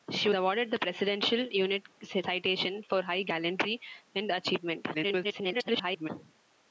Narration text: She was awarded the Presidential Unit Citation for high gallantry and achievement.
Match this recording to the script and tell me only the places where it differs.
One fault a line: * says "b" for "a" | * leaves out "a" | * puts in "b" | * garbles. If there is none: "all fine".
* leaves out "was"
* garbles